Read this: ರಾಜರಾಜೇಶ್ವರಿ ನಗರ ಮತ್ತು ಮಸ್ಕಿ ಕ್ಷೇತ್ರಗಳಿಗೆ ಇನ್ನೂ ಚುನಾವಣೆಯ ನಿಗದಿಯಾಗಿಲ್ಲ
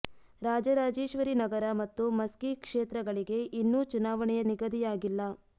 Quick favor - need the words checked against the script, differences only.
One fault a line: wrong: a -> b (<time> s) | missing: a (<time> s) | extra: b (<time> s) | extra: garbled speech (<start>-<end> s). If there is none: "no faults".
no faults